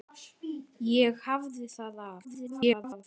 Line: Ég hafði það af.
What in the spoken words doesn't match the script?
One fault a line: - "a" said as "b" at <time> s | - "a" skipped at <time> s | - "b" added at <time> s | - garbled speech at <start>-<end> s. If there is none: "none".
- garbled speech at 2.2-3.0 s